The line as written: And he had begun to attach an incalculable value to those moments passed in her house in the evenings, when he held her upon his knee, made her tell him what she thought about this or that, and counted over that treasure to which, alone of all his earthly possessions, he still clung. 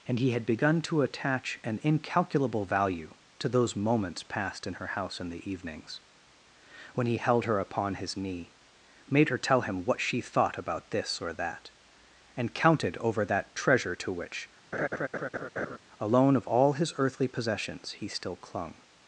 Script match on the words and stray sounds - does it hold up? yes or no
no